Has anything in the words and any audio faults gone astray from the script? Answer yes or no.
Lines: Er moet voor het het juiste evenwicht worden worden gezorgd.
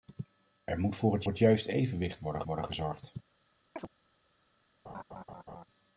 yes